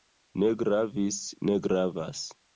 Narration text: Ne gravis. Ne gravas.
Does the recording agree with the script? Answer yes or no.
yes